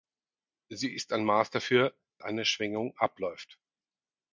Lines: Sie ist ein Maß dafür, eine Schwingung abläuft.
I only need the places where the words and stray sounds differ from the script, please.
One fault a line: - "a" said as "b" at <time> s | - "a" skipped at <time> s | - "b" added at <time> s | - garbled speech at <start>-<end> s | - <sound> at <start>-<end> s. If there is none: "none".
none